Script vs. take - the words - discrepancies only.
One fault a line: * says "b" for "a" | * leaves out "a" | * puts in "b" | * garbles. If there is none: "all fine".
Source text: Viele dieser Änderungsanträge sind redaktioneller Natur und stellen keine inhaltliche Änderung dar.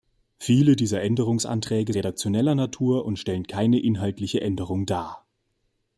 * leaves out "sind"